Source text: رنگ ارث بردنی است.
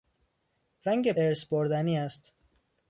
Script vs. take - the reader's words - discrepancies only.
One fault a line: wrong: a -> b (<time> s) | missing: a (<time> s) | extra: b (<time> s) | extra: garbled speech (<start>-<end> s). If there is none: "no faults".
no faults